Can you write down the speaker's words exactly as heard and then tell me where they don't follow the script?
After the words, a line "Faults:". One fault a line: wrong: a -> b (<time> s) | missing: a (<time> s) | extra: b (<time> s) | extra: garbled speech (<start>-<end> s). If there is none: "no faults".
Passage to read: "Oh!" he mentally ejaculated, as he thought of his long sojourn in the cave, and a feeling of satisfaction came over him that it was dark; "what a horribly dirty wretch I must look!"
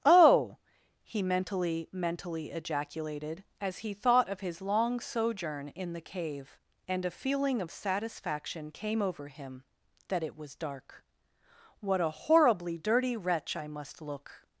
"Oh!" he mentally mentally ejaculated, as he thought of his long sojourn in the cave, and a feeling of satisfaction came over him that it was dark; "what a horribly dirty wretch I must look!"
Faults:
extra: mentally (1.9 s)